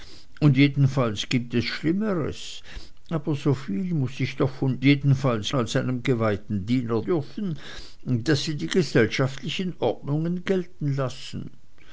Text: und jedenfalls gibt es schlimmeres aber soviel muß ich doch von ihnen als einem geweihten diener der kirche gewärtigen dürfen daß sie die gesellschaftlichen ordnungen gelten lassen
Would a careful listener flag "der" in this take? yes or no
yes